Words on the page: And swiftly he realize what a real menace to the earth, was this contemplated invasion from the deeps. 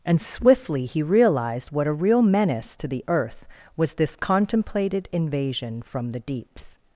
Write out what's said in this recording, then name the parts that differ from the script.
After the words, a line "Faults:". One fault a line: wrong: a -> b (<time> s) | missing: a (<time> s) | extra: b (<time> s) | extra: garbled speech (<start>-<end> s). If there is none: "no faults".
And swiftly he realized what a real menace to the earth, was this contemplated invasion from the deeps.
Faults:
wrong: realize -> realized (1.0 s)